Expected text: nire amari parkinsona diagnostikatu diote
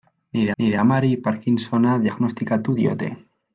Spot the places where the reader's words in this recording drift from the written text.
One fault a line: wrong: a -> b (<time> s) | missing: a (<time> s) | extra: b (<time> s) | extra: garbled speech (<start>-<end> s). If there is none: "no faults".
extra: nire (0.6 s)